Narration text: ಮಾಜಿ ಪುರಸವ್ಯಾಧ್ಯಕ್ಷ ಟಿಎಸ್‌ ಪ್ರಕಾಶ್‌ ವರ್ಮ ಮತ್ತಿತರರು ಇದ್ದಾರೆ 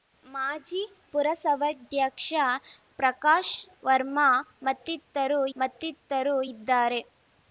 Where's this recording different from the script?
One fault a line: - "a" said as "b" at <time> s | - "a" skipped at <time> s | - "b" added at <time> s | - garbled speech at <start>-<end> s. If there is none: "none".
- "ಟಿಎಸ್" skipped at 2.3 s
- "ಮತ್ತಿತರರು" added at 5.6 s